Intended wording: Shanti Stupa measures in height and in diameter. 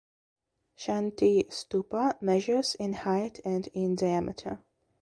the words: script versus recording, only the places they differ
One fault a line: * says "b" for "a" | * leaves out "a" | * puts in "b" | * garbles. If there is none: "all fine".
all fine